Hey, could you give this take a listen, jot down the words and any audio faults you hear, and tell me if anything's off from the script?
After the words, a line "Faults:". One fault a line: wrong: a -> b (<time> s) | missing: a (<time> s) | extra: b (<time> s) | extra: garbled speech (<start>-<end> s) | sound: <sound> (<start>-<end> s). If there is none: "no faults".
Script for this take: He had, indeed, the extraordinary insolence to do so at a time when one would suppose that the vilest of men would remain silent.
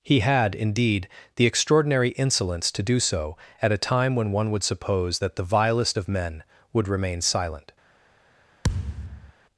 He had, indeed, the extraordinary insolence to do so at a time when one would suppose that the vilest of men would remain silent.
Faults:
sound: thud (8.6-9.3 s)